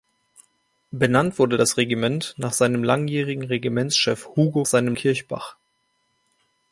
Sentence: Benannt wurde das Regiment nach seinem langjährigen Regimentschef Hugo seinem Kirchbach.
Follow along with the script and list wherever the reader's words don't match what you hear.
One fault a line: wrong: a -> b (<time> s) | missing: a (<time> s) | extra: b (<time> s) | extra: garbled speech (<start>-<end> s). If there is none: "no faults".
no faults